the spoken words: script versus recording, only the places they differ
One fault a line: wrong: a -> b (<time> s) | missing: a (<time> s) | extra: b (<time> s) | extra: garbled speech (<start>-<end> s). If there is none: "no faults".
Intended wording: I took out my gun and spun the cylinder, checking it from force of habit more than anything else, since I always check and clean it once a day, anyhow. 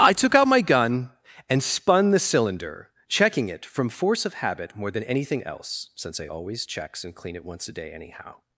wrong: check -> checks (6.6 s)